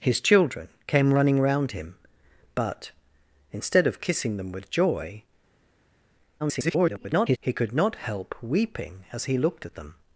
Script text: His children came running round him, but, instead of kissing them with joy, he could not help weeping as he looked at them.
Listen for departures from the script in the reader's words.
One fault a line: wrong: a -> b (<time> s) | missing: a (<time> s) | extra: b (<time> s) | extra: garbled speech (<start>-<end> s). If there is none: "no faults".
extra: garbled speech (6.4-7.4 s)